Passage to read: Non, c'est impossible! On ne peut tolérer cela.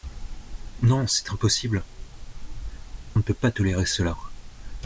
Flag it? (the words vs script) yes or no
yes